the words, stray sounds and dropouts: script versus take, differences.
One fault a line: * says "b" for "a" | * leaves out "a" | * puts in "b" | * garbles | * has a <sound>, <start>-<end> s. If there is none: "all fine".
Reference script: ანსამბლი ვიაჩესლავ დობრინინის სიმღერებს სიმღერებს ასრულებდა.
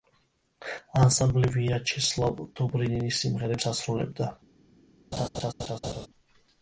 * leaves out "სიმღერებს"
* has a laugh, 5.1-6.1 s